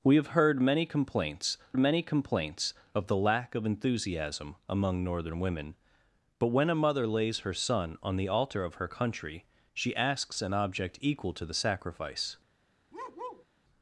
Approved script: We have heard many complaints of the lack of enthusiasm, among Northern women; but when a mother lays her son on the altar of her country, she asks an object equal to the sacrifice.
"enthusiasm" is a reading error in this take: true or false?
false